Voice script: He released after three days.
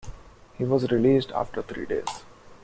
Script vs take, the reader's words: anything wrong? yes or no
yes